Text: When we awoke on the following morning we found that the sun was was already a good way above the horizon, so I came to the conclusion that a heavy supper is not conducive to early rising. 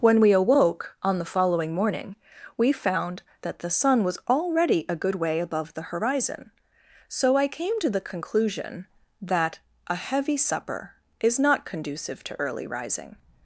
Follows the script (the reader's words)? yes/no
no